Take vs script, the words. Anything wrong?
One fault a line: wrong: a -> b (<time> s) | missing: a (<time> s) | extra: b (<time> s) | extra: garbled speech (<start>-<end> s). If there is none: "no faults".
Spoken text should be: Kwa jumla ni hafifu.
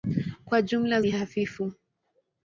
no faults